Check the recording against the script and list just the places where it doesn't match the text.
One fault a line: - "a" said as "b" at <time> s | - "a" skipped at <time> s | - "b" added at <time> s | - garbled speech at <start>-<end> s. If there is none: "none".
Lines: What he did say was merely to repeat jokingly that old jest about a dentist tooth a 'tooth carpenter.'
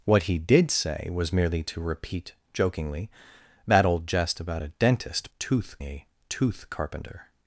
none